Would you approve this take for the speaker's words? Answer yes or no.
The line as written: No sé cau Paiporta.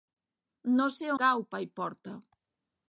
yes